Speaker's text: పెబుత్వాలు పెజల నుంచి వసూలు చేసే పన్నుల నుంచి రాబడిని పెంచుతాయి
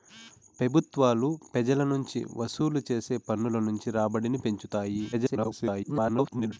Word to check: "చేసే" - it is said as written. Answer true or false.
true